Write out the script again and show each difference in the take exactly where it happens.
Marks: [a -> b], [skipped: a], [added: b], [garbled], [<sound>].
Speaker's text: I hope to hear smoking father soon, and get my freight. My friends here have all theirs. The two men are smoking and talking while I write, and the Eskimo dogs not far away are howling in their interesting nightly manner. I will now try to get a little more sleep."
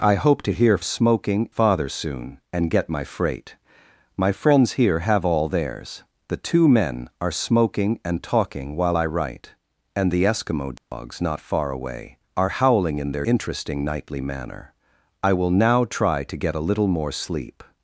I hope to hear smoking father soon, and get my freight. My friends here have all theirs. The two men are smoking and talking while I write, and the Eskimo dogs [dropout] not far away are howling in their interesting nightly manner. I will now try to get a little more sleep."